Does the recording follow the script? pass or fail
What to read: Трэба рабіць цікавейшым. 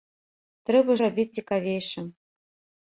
pass